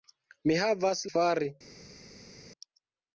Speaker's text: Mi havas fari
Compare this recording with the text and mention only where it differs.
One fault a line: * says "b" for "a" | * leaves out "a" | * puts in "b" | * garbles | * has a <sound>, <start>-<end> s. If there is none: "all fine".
all fine